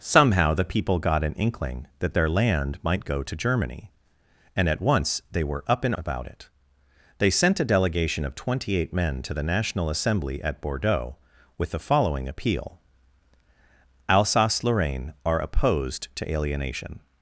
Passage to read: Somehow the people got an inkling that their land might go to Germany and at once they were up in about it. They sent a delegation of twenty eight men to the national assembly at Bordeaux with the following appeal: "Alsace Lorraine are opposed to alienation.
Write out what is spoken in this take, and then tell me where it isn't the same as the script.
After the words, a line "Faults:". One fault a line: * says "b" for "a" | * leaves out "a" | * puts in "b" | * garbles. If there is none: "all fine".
Somehow the people got an inkling that their land might go to Germany and at once they were up in about it. They sent a delegation of twenty eight men to the national assembly at Bordeaux with the following appeal: "Alsace Lorraine are opposed to alienation.
Faults:
all fine